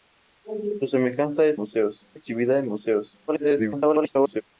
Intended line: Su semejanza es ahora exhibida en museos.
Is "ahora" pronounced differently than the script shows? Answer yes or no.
yes